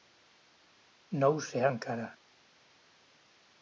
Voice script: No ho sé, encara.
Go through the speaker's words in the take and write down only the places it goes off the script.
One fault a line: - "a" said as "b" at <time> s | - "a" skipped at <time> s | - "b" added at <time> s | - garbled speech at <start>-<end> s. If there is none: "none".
none